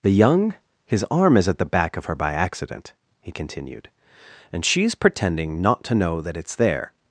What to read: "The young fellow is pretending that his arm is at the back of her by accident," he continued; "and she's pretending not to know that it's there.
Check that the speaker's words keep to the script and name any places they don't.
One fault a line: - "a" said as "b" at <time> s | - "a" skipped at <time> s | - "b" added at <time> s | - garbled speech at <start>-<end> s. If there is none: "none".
- "fellow is pretending that" skipped at 0.6 s